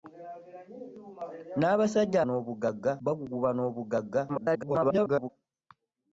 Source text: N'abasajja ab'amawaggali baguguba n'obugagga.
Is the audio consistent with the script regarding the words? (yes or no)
no